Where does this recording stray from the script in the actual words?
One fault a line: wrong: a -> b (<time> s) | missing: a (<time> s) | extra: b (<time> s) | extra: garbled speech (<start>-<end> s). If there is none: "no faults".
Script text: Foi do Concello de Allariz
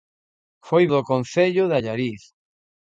no faults